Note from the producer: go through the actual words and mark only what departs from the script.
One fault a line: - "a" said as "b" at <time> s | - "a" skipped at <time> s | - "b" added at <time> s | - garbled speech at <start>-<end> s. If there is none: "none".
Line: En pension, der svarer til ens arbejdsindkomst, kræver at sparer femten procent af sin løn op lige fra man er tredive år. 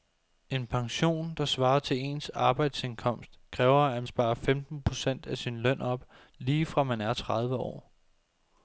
none